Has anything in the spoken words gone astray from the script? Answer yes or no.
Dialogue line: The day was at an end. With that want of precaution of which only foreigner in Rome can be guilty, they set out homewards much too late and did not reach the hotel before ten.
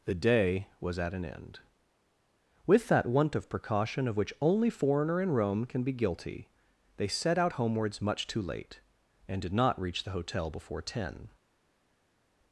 no